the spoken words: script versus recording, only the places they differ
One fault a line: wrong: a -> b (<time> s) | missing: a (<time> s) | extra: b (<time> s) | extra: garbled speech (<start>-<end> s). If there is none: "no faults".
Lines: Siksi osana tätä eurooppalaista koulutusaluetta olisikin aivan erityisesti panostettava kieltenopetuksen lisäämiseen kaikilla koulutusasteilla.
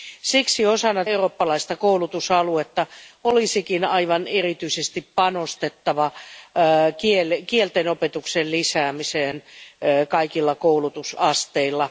missing: tätä (1.1 s)